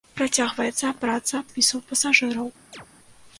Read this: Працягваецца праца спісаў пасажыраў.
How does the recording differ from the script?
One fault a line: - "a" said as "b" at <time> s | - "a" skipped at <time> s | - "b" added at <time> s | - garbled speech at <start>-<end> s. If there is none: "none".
none